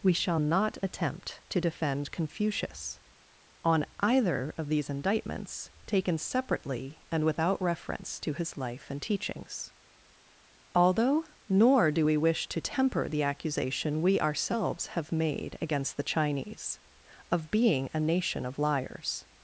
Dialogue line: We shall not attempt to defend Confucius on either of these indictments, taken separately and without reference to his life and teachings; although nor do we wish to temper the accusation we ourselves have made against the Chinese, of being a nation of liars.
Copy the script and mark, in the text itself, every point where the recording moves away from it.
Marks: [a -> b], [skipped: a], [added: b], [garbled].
We shall not attempt to defend Confucius on either of these indictments, taken separately and without reference to his life and teachings; although nor do we wish to temper the accusation we ourselves have made against the Chinese, of being a nation of liars.